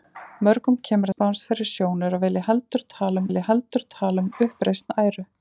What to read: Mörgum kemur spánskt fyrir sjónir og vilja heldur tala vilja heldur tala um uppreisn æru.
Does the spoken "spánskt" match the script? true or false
true